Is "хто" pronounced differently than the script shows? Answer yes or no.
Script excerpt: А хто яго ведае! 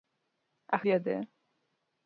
yes